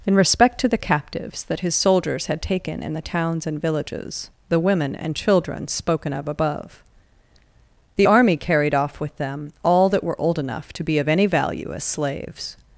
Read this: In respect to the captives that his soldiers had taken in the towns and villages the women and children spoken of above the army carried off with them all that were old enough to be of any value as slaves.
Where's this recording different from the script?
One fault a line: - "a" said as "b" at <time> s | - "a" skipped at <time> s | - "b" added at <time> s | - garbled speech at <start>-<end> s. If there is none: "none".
none